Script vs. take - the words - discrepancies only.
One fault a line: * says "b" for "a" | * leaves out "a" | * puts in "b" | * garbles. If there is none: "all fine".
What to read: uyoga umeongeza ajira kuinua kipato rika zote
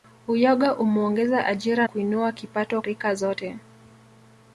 all fine